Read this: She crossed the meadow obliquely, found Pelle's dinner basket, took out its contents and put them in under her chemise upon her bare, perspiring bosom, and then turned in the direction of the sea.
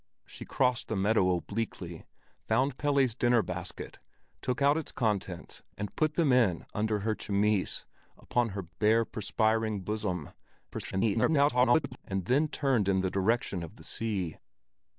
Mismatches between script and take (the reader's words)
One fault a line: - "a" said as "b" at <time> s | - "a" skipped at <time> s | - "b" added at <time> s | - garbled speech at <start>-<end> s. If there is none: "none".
- garbled speech at 10.7-12.0 s